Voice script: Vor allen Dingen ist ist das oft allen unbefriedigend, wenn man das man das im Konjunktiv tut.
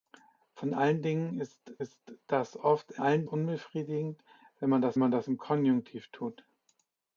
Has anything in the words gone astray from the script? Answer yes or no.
no